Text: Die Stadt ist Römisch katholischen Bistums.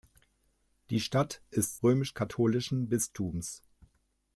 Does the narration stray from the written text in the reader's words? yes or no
no